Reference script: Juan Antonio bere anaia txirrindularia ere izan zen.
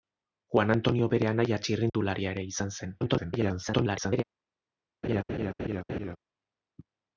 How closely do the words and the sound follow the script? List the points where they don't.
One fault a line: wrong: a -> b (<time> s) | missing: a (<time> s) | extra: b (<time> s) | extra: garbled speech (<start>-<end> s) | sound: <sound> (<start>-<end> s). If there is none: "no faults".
sound: dropout (1.9-1.9 s)
extra: garbled speech (3.0-4.2 s)
sound: laugh (5.0-6.2 s)